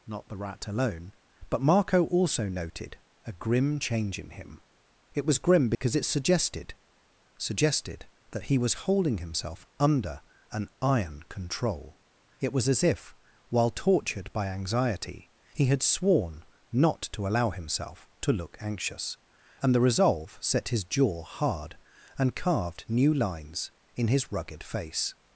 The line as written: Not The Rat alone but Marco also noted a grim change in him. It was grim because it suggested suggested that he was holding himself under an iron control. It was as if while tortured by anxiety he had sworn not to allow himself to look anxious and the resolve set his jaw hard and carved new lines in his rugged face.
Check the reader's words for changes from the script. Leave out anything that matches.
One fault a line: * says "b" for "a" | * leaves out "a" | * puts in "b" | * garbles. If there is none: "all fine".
all fine